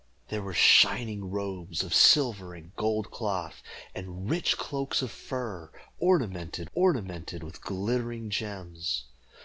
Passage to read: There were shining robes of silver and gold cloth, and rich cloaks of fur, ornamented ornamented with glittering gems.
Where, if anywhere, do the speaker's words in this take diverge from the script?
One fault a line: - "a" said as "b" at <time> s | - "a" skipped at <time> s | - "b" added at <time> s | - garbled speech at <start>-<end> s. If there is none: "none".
none